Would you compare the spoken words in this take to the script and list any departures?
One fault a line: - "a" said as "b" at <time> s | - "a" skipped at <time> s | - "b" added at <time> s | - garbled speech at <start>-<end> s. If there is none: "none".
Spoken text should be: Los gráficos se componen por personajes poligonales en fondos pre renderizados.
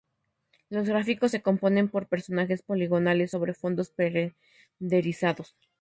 - "en" said as "sobre" at 3.3 s